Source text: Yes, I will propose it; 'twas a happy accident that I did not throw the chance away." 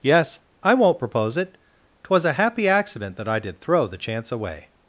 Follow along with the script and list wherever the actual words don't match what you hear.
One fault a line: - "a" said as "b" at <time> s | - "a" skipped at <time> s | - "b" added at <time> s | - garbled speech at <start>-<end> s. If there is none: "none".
- "will" said as "won't" at 0.7 s
- "not" skipped at 3.6 s